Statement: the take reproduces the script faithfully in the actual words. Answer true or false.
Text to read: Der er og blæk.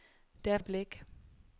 true